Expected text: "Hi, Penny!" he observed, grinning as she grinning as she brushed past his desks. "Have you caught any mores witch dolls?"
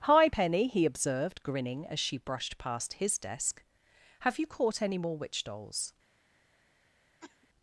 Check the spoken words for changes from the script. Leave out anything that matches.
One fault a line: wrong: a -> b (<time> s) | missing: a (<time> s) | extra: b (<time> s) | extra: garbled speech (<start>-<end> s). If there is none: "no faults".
missing: grinning as she (2.2 s)
wrong: desks -> desk (3.2 s)
wrong: mores -> more (5.0 s)